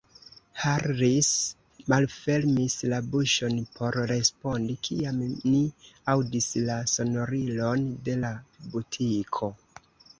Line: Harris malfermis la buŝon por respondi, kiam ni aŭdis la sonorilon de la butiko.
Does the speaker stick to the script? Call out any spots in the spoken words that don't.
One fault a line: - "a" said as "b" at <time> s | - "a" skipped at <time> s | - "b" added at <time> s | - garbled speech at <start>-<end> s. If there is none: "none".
none